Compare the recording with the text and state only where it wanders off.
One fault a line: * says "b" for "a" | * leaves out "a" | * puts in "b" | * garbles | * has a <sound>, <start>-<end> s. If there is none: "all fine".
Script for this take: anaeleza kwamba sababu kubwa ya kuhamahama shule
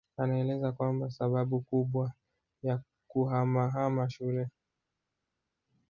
all fine